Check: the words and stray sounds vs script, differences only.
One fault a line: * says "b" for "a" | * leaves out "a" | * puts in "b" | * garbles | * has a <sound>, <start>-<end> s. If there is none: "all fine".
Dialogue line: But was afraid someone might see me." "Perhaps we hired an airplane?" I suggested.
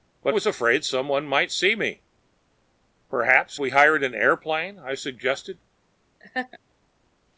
* has a laugh, 6.2-6.6 s